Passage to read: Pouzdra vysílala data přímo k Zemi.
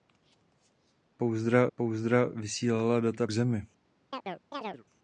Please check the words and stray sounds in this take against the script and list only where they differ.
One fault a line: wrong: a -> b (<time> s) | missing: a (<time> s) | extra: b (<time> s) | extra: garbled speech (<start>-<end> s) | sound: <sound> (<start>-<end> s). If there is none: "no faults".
extra: pouzdra (1.8 s)
missing: přímo (3.3 s)
sound: chirp (4.1-4.8 s)